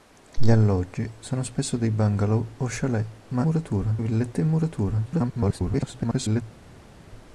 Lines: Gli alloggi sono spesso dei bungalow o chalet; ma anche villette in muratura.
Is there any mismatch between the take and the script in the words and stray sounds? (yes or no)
yes